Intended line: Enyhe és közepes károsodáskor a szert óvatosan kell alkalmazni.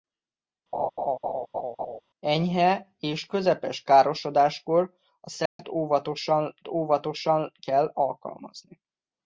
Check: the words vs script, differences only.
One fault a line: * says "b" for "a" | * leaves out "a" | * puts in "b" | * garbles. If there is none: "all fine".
* puts in "óvatosan"